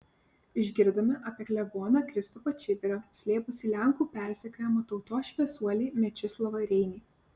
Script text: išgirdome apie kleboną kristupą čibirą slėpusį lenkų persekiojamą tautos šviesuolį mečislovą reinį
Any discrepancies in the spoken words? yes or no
no